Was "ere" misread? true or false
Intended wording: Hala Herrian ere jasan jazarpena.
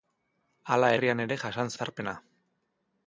false